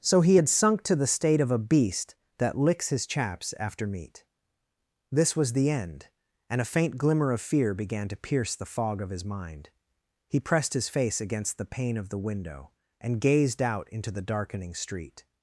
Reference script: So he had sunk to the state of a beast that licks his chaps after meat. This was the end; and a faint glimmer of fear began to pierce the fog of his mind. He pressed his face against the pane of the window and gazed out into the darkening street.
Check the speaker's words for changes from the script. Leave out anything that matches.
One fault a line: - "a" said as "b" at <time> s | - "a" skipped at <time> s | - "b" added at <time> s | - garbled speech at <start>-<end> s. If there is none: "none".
none